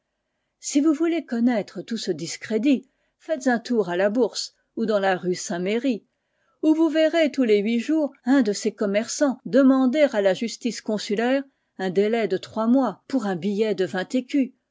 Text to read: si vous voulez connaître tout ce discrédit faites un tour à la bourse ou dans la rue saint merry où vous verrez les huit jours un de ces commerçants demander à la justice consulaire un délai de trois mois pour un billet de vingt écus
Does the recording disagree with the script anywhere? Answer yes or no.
yes